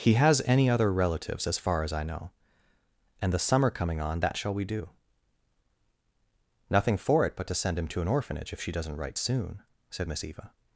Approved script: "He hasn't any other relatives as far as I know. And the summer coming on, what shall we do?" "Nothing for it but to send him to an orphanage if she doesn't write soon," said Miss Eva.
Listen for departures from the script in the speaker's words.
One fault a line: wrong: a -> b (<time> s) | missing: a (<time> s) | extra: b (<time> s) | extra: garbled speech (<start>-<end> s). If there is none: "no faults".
wrong: hasn't -> has (0.1 s)
wrong: what -> that (4.2 s)